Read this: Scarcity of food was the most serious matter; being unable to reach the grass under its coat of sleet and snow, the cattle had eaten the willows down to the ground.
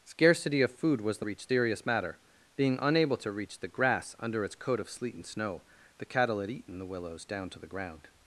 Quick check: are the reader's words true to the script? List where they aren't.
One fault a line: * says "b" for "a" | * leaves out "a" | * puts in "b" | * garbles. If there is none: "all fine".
* says "reach" for "most"